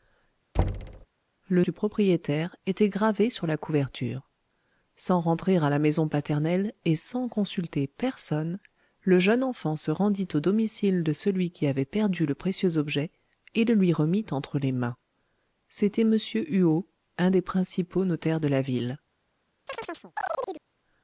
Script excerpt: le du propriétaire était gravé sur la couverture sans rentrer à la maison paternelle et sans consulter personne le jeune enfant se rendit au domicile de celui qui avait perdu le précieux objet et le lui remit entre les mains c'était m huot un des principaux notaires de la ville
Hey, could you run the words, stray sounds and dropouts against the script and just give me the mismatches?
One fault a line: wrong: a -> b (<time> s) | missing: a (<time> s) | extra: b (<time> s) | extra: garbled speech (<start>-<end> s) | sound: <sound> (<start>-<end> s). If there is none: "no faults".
sound: thud (0.5-1.1 s)
sound: chirp (19.7-20.6 s)